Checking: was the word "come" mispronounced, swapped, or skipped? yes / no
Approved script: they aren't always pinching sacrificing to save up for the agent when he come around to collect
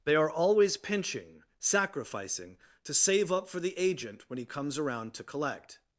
yes